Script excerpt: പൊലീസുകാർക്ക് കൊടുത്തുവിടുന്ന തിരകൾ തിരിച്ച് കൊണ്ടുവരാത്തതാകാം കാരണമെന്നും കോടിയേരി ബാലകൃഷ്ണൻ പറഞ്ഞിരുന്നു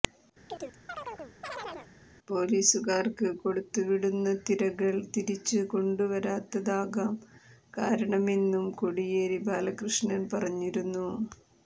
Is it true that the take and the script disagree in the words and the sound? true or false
true